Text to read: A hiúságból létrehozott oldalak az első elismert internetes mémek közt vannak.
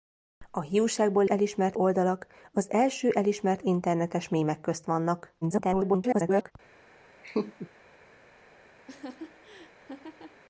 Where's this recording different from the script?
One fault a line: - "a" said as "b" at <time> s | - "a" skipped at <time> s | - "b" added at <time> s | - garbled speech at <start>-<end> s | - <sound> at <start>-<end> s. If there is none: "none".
- "létrehozott" said as "elismert" at 1.2 s
- garbled speech at 5.4-6.5 s
- laugh at 7.2-7.7 s
- laugh at 8.9-10.4 s